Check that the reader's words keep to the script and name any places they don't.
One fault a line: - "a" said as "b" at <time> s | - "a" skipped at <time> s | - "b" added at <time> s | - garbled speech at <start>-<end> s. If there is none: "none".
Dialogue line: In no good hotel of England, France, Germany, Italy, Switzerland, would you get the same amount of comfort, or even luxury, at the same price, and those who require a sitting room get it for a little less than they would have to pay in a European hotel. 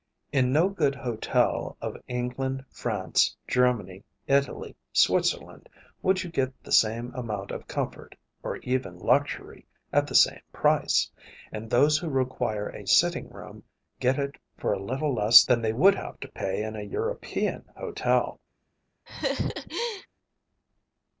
none